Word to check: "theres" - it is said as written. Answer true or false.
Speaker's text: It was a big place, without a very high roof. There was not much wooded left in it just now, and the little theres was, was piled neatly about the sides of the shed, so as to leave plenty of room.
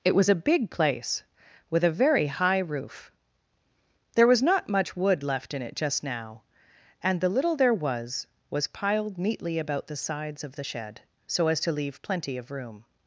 false